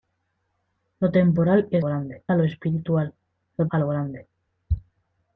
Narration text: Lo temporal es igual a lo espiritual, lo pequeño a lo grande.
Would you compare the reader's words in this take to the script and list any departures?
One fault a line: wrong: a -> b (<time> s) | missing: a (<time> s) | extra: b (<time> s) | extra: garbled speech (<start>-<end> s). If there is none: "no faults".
wrong: igual -> grande (1.9 s)
missing: pequeño (3.7 s)